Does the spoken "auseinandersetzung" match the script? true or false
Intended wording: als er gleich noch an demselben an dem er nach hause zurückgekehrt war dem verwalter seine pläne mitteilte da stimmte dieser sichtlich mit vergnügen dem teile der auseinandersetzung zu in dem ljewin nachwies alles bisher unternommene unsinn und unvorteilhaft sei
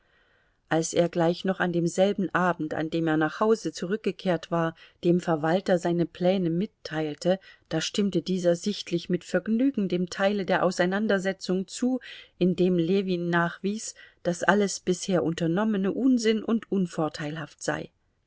true